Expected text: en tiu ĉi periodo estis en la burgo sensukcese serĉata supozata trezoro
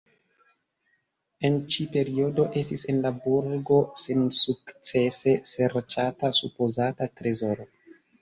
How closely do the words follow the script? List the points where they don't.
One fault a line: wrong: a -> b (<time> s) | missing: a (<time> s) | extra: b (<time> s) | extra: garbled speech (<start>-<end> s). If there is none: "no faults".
missing: tiu (1.6 s)